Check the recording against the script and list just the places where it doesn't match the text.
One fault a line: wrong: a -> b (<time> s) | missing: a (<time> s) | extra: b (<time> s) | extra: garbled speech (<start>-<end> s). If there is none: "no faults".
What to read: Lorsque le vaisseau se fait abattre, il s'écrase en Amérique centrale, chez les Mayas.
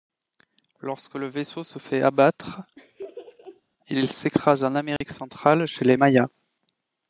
no faults